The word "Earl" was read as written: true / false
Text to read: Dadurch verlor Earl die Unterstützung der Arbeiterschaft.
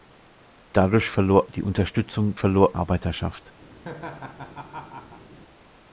false